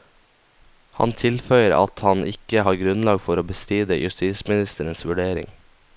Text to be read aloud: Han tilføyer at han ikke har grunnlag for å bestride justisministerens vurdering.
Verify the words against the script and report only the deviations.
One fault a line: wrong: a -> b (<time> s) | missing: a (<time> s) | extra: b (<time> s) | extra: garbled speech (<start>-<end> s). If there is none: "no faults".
no faults